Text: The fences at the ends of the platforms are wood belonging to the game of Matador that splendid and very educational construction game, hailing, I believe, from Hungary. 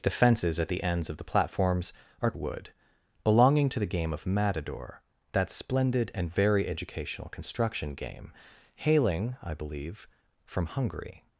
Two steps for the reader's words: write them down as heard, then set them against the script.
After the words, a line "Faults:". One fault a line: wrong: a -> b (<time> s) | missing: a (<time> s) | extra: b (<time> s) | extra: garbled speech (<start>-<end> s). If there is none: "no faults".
The fences at the ends of the platforms are wood belonging to the game of Matador that splendid and very educational construction game, hailing, I believe, from Hungary.
Faults:
no faults